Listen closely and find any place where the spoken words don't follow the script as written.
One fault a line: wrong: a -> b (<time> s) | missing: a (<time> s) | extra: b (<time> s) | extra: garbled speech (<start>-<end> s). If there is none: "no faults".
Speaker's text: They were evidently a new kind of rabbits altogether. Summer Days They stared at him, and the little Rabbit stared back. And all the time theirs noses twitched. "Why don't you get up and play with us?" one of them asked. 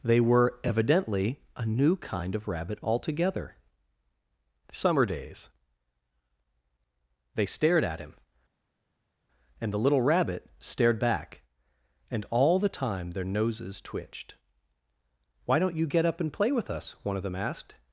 wrong: rabbits -> rabbit (2.5 s)
wrong: theirs -> their (13.1 s)